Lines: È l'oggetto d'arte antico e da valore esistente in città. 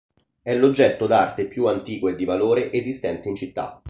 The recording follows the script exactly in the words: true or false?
false